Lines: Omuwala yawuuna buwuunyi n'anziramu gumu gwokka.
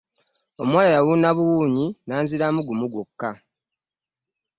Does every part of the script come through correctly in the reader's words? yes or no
yes